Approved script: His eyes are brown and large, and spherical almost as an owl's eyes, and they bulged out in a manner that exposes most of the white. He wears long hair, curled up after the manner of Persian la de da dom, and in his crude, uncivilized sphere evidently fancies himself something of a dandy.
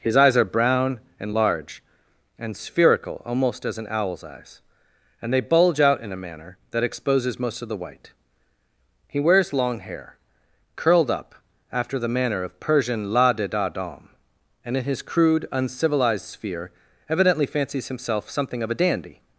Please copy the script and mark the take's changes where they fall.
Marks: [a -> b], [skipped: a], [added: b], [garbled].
His eyes are brown and large, and spherical almost as an owl's eyes, and they [bulged -> bulge] out in a manner that exposes most of the white. He wears long hair, curled up after the manner of Persian la de da dom, and in his crude, uncivilized sphere evidently fancies himself something of a dandy.